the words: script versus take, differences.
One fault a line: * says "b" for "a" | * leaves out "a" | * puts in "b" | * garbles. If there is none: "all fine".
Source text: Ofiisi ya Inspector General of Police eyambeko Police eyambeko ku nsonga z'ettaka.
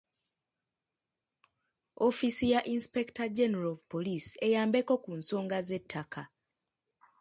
* leaves out "Police eyambeko"